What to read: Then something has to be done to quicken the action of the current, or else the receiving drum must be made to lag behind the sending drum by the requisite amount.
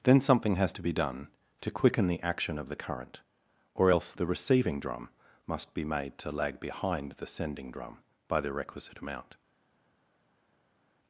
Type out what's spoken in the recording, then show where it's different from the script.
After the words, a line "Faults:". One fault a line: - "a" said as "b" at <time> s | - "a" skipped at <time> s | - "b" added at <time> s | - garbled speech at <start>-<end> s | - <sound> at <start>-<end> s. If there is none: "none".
Then something has to be done to quicken the action of the current, or else the receiving drum must be made to lag behind the sending drum by the requisite amount.
Faults:
none